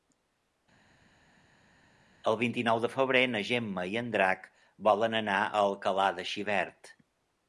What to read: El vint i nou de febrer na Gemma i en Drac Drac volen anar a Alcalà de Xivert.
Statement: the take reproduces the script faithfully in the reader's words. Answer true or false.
false